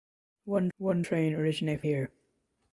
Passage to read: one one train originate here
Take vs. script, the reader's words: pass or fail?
pass